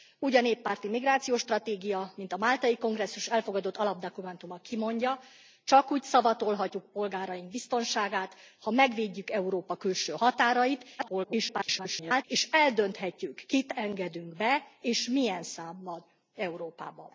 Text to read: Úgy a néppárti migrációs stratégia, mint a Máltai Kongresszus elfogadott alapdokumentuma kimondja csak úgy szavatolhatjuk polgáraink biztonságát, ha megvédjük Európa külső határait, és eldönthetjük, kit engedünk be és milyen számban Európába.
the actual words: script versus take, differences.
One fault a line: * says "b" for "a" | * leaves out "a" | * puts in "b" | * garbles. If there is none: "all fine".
* garbles